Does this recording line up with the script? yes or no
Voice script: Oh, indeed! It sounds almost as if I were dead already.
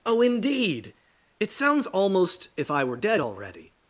no